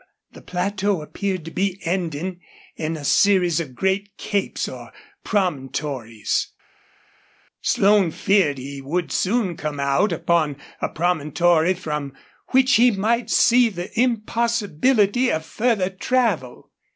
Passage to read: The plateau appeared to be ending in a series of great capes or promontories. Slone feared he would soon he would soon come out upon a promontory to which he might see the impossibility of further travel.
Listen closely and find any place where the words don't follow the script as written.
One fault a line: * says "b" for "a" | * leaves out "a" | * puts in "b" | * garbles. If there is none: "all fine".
* leaves out "he would soon"
* says "from" for "to"